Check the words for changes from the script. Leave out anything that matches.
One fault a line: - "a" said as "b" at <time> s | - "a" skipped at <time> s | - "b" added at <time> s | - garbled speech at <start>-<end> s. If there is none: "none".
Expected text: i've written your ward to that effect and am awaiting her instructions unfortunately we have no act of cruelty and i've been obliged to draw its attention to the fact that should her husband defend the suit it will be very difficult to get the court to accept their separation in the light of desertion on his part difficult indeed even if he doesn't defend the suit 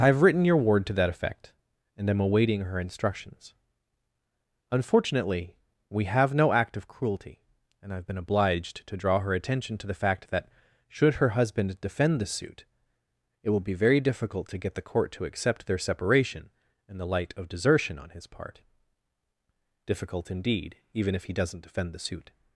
- "its" said as "her" at 9.2 s